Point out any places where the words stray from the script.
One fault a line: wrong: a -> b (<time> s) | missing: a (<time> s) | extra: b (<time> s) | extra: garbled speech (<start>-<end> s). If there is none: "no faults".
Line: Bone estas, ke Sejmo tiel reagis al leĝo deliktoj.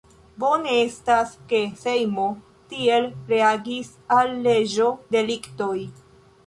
no faults